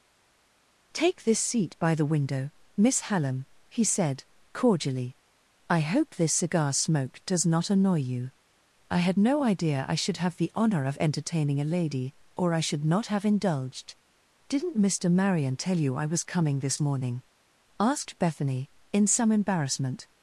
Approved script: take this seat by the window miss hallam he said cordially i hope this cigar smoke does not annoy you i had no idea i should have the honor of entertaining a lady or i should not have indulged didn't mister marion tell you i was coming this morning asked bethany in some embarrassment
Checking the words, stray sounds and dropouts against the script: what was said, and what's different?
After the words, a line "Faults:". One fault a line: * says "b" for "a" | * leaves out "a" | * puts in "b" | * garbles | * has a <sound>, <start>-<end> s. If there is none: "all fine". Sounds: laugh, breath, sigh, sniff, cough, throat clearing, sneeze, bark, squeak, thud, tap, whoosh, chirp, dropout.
take this seat by the window miss hallam he said cordially i hope this cigar smoke does not annoy you i had no idea i should have the honor of entertaining a lady or i should not have indulged didn't mister marion tell you i was coming this morning asked bethany in some embarrassment
Faults:
all fine